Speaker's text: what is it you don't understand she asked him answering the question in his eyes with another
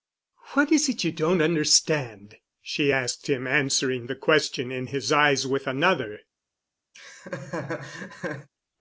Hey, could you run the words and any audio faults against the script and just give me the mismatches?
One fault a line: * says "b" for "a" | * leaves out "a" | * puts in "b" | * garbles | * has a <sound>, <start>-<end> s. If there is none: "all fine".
* has a laugh, 6.9-8.5 s